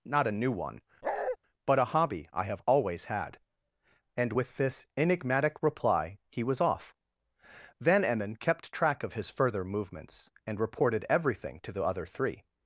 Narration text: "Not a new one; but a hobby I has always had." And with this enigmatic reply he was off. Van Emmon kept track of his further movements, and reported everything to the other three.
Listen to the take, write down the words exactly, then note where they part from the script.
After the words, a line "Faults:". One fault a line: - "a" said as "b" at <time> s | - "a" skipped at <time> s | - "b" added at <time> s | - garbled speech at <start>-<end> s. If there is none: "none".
"Not a new one; but a hobby I have always had." And with this enigmatic reply he was off. Van Emmon kept track of his further movements, and reported everything to the other three.
Faults:
- "has" said as "have" at 2.4 s